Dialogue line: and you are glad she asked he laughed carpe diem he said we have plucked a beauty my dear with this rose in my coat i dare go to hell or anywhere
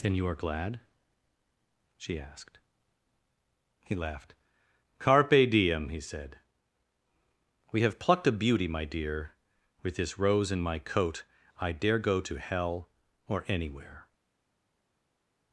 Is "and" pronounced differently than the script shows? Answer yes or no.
yes